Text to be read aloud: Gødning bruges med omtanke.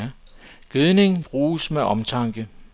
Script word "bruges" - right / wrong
right